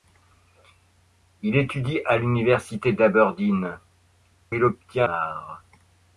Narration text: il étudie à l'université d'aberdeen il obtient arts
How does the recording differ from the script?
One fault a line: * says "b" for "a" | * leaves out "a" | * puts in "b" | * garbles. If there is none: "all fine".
all fine